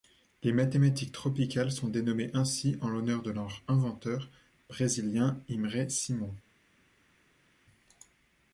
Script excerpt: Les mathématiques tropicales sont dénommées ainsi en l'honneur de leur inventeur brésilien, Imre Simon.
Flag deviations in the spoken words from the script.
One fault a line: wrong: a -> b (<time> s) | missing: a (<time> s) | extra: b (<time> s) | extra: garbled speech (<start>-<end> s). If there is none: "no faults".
no faults